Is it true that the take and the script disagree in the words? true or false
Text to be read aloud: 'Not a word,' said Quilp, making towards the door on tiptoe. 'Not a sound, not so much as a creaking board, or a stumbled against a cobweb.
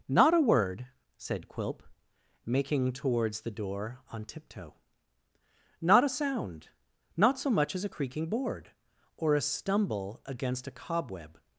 true